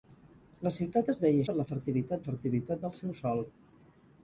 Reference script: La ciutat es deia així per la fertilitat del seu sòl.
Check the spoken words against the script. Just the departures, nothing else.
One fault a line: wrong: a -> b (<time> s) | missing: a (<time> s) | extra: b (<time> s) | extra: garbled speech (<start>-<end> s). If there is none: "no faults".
missing: així (1.4 s)
extra: fertilitat (2.3 s)